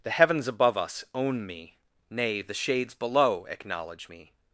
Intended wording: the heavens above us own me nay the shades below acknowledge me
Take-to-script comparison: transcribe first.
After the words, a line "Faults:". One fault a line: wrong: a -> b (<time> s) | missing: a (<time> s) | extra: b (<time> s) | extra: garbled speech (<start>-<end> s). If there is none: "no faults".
the heavens above us own me nay the shades below acknowledge me
Faults:
no faults